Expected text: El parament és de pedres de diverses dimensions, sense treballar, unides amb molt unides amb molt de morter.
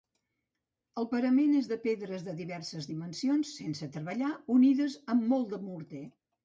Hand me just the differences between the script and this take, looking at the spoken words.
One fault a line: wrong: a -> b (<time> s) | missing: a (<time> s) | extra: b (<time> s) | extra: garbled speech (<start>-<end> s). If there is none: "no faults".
missing: unides amb molt (5.6 s)